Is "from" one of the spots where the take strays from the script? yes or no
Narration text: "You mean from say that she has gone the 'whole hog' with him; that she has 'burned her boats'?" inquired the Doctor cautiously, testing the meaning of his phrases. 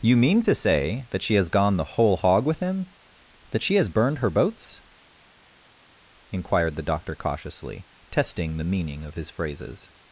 yes